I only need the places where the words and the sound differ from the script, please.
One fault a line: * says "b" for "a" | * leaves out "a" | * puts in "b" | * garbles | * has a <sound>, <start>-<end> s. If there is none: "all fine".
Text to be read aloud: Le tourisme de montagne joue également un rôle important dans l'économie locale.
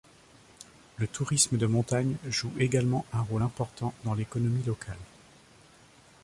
all fine